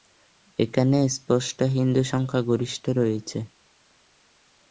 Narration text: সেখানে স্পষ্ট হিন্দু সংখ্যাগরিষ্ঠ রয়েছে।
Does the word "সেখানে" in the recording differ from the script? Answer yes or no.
yes